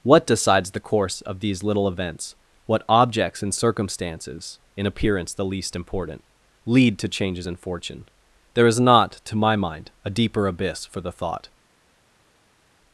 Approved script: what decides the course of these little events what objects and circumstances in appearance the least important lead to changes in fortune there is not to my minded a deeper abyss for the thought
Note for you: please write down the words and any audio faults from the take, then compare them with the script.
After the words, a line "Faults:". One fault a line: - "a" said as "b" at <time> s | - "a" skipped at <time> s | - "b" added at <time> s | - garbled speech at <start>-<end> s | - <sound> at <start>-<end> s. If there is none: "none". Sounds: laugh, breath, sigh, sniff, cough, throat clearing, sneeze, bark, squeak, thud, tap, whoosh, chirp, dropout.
what decides the course of these little events what objects and circumstances in appearance the least important lead to changes in fortune there is not to my mind a deeper abyss for the thought
Faults:
- "minded" said as "mind" at 9.6 s